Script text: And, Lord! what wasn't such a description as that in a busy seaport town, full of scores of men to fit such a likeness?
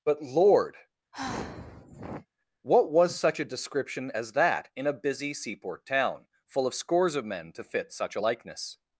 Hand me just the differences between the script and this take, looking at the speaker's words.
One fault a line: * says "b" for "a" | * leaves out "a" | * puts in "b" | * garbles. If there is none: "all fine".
* says "But" for "And"
* says "was" for "wasn't"